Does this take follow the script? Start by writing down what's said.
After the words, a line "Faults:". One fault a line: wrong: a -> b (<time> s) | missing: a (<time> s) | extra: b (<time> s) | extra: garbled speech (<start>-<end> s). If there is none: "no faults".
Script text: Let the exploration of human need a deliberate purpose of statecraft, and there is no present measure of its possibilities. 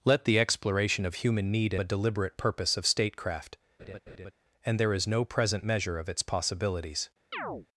Let the exploration of human need a deliberate purpose of statecraft, and there is no present measure of its possibilities.
Faults:
no faults